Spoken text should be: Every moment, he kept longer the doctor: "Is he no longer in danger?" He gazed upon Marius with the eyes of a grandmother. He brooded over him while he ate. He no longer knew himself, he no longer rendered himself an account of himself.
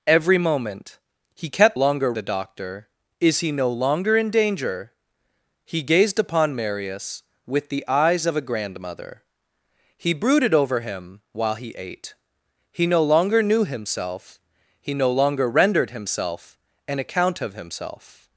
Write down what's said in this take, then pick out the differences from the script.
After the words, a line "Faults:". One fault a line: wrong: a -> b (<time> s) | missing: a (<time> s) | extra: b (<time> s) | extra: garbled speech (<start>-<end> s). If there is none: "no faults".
Every moment, he kept longer the doctor: "Is he no longer in danger?" He gazed upon Marius with the eyes of a grandmother. He brooded over him while he ate. He no longer knew himself, he no longer rendered himself an account of himself.
Faults:
no faults